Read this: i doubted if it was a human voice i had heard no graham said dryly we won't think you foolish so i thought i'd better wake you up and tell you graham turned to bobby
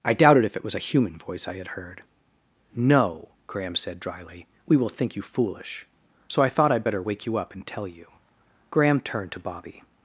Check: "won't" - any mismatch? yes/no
yes